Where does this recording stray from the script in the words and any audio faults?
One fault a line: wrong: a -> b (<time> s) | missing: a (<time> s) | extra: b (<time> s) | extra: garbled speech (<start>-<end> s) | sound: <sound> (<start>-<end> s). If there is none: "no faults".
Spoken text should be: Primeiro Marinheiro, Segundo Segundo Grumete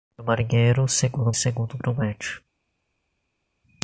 no faults